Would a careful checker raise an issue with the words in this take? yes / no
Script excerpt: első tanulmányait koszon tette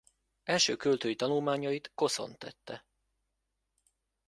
yes